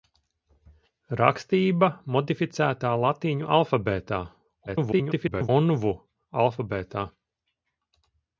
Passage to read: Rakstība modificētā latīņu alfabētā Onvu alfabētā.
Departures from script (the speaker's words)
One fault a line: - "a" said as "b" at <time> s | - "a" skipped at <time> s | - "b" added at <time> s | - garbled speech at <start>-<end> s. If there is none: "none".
- garbled speech at 4.7-5.5 s